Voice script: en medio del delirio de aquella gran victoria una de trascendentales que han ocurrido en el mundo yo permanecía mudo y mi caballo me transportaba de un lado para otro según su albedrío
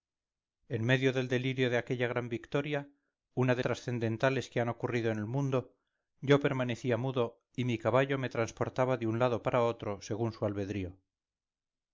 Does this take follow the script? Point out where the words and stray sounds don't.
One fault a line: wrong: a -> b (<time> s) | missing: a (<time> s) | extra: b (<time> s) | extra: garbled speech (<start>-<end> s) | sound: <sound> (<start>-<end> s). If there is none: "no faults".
no faults